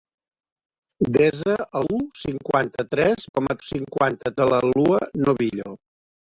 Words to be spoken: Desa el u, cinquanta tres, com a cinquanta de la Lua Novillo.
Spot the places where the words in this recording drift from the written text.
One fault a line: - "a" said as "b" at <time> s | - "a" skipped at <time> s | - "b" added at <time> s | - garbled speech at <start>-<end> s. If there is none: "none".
none